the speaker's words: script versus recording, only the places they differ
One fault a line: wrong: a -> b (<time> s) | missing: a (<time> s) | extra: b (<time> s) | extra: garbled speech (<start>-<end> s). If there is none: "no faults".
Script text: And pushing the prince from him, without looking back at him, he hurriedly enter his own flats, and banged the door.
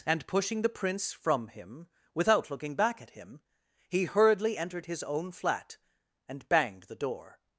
wrong: enter -> entered (4.6 s)
wrong: flats -> flat (5.3 s)